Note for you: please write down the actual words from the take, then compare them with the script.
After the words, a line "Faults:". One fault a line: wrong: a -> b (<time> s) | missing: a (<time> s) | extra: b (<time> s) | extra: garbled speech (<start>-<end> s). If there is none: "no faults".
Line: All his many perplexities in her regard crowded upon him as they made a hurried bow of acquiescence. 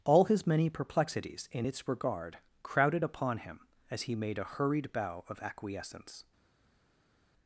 All his many perplexities in its regard crowded upon him as he made a hurried bow of acquiescence.
Faults:
wrong: her -> its (1.7 s)
wrong: they -> he (4.0 s)